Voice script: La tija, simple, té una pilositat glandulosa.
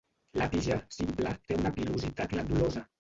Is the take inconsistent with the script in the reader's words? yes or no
no